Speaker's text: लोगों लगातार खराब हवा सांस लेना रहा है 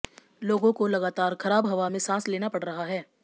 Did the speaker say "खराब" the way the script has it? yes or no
yes